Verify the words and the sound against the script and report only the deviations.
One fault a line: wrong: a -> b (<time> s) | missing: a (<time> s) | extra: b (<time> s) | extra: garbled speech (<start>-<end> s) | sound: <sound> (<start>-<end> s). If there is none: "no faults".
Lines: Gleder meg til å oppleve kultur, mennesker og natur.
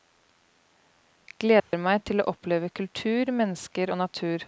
sound: dropout (1.6-1.7 s)